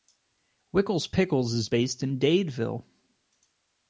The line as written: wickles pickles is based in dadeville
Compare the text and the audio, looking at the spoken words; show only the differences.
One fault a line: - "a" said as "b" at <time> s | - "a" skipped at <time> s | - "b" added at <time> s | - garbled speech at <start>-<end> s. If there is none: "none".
none